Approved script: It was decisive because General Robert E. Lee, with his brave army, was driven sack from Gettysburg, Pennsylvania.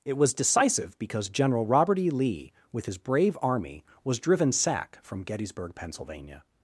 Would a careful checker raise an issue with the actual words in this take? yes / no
no